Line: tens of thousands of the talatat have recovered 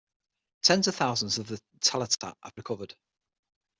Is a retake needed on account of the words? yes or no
no